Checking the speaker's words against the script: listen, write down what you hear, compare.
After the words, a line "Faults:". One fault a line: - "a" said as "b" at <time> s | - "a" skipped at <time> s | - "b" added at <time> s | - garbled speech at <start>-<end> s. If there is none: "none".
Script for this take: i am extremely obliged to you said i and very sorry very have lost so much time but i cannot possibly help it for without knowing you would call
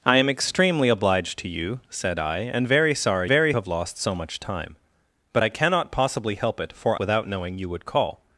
i am extremely obliged to you said i and very sorry very have lost so much time but i cannot possibly help it for without knowing you would call
Faults:
none